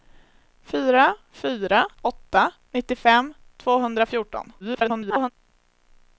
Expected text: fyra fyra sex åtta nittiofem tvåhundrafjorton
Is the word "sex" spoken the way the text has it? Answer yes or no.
no